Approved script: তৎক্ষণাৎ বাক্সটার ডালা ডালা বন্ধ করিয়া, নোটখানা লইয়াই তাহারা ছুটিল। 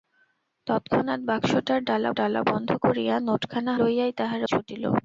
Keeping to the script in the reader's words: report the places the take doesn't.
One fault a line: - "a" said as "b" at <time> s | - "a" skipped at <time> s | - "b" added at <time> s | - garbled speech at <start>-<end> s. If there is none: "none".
none